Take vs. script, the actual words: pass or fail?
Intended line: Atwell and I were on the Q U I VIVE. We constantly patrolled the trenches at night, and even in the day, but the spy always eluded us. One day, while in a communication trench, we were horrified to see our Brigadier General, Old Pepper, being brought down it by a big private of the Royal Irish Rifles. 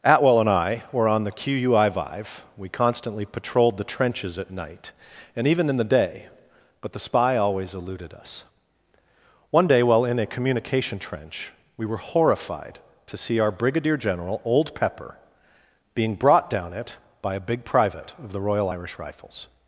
pass